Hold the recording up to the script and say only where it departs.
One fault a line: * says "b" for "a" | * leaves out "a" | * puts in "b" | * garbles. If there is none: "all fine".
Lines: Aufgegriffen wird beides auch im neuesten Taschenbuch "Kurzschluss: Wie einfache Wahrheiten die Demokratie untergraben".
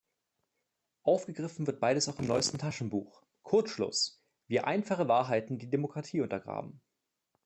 all fine